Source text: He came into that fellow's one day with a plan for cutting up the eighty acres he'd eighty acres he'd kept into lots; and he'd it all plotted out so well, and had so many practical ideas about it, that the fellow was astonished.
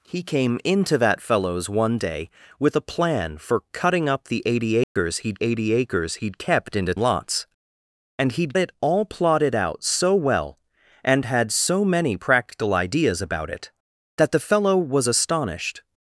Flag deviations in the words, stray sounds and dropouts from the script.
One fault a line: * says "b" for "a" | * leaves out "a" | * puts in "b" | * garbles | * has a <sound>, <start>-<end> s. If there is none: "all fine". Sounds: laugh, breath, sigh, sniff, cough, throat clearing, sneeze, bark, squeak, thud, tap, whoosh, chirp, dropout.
* has a dropout, 4.8-5.0 s